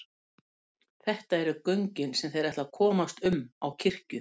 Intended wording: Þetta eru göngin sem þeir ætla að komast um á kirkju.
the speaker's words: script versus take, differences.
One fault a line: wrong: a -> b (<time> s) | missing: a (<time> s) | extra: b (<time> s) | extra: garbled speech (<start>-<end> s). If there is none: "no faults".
no faults